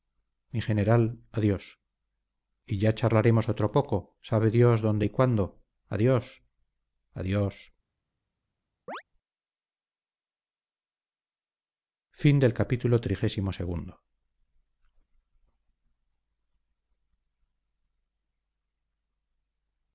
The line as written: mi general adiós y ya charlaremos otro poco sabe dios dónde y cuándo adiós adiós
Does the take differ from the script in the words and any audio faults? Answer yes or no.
yes